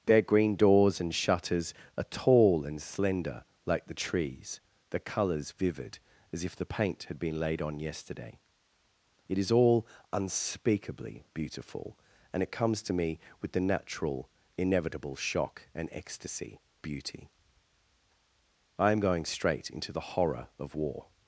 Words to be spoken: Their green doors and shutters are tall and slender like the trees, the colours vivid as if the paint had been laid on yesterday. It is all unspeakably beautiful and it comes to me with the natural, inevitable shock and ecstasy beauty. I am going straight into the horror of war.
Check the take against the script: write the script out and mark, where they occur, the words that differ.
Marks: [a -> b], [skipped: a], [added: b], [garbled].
Their green doors and shutters are tall and slender like the trees, the colours vivid as if the paint had been laid on yesterday. It is all unspeakably beautiful and it comes to me with the natural, inevitable shock and ecstasy beauty. I am going straight into the horror of war.